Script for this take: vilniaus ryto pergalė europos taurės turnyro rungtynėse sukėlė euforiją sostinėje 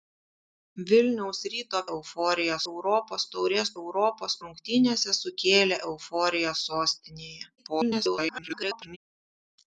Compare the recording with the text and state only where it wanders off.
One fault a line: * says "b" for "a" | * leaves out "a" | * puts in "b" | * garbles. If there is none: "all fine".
* says "euforiją" for "pergalė"
* says "europos" for "turnyro"
* garbles